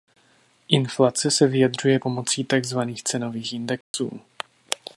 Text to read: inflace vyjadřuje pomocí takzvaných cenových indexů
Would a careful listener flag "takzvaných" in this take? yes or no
no